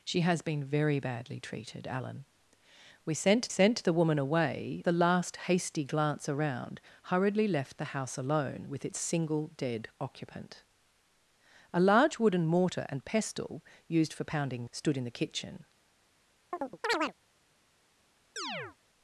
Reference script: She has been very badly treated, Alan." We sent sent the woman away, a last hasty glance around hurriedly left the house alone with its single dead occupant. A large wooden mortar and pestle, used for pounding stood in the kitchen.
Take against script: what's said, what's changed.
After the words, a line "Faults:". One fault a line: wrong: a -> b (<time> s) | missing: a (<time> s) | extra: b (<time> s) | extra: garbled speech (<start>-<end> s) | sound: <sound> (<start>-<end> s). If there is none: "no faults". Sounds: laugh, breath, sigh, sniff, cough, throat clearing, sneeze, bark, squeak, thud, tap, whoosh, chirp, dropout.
She has been very badly treated, Alan." We sent sent the woman away, a last hasty glance around hurriedly left the house alone with its single dead occupant. A large wooden mortar and pestle, used for pounding stood in the kitchen.
Faults:
sound: chirp (16.5-17.1 s)
sound: chirp (18.4-18.8 s)